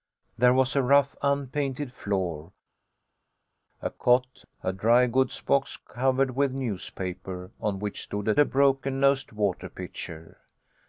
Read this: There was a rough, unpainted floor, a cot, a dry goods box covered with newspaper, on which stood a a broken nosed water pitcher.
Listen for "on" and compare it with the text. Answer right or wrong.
right